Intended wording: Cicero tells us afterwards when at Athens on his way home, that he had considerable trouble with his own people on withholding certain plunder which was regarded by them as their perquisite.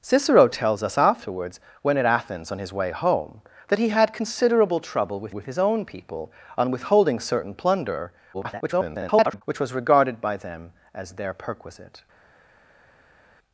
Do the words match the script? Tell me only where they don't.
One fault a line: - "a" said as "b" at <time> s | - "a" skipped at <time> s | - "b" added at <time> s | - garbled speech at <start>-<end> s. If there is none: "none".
- "with" added at 5.3 s
- garbled speech at 8.3-9.4 s